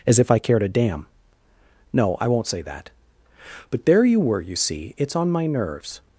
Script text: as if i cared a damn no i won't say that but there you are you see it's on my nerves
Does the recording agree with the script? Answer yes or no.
no